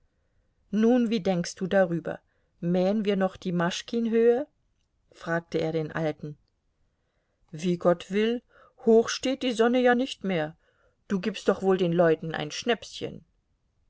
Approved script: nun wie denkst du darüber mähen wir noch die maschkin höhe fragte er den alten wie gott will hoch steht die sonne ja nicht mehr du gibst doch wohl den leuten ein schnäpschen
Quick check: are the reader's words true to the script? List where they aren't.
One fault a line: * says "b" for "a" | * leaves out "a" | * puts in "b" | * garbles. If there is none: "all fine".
all fine